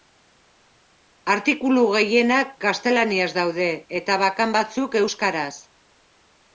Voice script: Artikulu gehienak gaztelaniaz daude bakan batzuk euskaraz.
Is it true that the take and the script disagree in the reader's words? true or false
true